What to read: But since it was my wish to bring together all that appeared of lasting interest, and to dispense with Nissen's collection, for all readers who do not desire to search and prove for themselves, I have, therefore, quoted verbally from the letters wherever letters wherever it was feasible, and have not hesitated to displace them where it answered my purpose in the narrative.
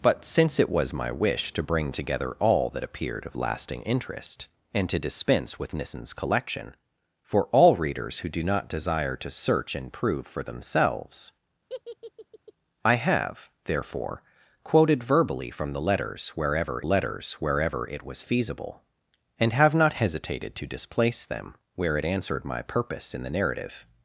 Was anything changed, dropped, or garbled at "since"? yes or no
no